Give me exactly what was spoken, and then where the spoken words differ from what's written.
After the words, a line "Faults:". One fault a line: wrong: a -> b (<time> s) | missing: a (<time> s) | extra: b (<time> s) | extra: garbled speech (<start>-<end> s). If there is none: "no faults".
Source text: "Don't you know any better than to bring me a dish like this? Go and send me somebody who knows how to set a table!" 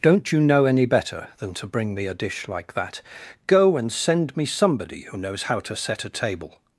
"Don't you know any better than to bring me a dish like that? Go and send me somebody who knows how to set a table!"
Faults:
wrong: this -> that (2.7 s)